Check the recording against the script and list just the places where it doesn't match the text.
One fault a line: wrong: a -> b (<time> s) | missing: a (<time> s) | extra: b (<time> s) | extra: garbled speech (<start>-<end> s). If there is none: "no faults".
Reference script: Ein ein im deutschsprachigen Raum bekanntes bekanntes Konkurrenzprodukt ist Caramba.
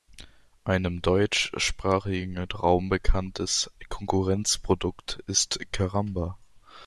missing: ein (0.8 s)
missing: bekanntes (3.7 s)